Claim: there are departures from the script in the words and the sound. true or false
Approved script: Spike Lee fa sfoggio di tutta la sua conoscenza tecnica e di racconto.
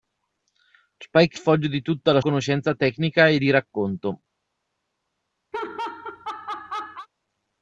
true